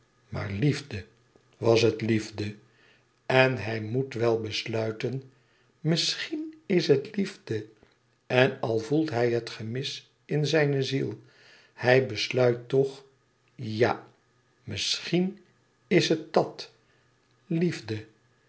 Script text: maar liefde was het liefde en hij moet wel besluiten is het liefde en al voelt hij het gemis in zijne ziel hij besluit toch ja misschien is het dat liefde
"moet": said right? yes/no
yes